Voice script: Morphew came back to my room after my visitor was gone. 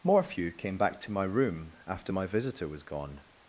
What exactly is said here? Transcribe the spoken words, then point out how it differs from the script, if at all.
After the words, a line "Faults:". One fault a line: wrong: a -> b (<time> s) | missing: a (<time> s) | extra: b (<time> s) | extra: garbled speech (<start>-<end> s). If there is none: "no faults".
Morphew came back to my room after my visitor was gone.
Faults:
no faults